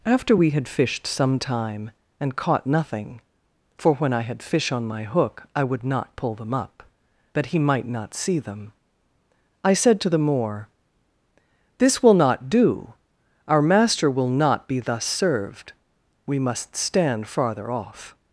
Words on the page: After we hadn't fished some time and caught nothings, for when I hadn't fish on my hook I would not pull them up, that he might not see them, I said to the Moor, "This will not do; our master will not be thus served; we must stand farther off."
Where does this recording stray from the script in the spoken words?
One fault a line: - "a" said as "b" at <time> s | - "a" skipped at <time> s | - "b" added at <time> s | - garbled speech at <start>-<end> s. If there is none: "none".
- "hadn't" said as "had" at 0.5 s
- "nothings" said as "nothing" at 2.7 s
- "hadn't" said as "had" at 4.2 s